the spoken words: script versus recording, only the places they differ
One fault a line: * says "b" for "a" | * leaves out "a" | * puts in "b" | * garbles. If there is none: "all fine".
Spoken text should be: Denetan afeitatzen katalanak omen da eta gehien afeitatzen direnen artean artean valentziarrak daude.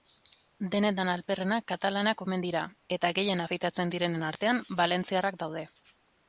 * says "alperrenak" for "afeitatzen"
* says "dira" for "da"
* leaves out "artean"